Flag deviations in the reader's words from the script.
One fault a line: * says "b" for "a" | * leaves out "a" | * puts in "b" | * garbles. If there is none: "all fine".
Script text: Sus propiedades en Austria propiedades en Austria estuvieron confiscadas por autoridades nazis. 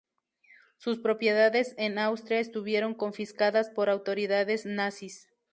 * leaves out "propiedades en Austria"